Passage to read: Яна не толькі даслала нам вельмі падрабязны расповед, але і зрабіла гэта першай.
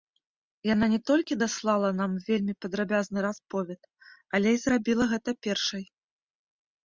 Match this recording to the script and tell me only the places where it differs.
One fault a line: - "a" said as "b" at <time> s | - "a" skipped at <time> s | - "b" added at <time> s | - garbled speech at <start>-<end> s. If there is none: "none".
none